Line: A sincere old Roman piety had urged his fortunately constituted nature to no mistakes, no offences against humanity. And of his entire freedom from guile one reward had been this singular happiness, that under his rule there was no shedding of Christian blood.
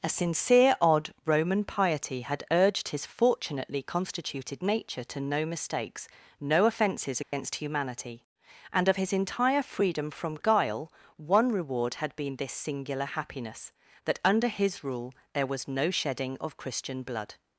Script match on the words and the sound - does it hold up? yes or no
no